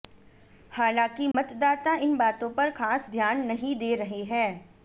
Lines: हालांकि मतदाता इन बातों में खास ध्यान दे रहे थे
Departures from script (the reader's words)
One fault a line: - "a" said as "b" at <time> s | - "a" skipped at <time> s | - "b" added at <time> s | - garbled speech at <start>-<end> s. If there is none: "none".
- "में" said as "पर" at 2.5 s
- "नहीं" added at 3.5 s
- "थे" said as "हैं" at 4.2 s